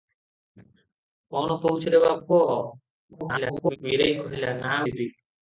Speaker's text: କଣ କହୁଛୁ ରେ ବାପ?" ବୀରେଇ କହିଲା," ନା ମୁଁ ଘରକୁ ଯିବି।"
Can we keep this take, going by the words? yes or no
no